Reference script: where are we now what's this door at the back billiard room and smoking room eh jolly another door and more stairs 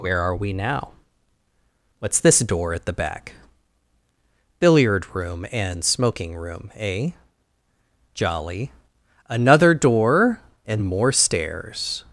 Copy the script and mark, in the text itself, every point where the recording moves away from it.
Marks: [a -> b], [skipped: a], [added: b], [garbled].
where are we now what's this door at the back billiard room and smoking room eh jolly another door and more stairs